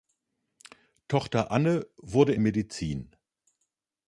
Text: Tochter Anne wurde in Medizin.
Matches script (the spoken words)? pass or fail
pass